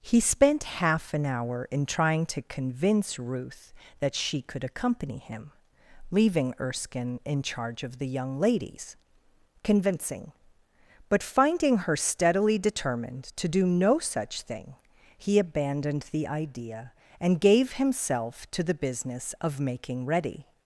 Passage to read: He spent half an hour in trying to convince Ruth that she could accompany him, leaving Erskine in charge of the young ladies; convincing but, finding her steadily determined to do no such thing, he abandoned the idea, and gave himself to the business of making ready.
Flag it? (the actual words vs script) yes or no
no